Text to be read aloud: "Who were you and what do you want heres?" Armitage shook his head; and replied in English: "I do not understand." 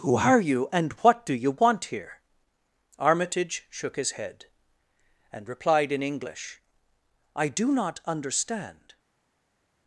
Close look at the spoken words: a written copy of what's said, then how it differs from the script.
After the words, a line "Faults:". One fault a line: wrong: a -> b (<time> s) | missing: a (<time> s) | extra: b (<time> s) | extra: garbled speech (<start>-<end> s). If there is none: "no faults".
"Who are you and what do you want here?" Armitage shook his head; and replied in English: "I do not understand."
Faults:
wrong: were -> are (0.1 s)
wrong: heres -> here (1.8 s)